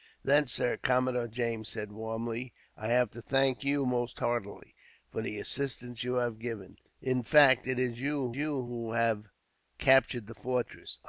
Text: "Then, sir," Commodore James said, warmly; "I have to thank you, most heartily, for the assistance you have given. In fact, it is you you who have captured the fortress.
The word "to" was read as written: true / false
true